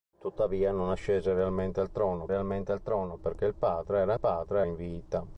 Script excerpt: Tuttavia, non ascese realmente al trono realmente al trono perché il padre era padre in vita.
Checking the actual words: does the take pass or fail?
pass